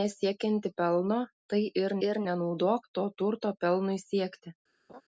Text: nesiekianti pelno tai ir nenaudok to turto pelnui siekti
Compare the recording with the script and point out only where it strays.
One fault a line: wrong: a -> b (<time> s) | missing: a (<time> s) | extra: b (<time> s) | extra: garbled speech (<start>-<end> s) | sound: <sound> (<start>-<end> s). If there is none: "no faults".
extra: ir (2.1 s)
sound: laugh (4.9-5.0 s)